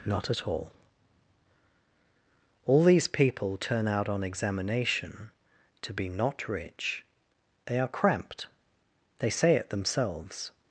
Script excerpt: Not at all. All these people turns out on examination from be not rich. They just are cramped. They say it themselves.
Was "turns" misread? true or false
true